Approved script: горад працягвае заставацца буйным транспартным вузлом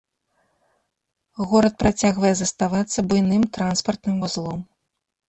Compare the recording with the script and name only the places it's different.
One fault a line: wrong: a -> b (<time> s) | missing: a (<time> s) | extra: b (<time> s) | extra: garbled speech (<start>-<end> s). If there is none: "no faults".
no faults